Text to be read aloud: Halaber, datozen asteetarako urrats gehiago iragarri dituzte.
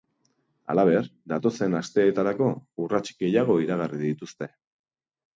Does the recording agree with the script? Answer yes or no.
yes